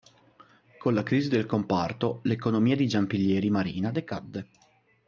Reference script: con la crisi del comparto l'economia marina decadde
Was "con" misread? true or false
false